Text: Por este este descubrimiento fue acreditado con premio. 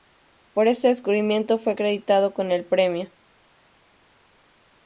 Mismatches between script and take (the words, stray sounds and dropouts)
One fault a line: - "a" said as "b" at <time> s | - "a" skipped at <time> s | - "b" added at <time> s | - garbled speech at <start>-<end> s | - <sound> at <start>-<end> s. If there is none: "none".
- "este" skipped at 0.9 s
- "el" added at 2.5 s